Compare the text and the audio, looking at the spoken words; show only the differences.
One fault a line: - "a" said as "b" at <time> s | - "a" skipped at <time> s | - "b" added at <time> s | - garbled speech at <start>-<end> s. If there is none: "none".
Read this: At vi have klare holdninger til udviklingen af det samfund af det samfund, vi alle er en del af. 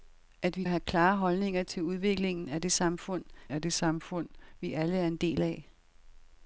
none